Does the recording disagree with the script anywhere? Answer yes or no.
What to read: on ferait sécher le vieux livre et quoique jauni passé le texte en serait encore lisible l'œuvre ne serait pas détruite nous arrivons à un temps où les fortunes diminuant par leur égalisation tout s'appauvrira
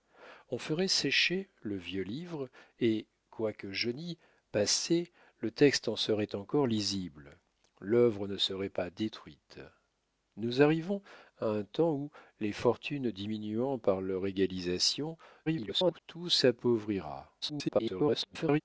yes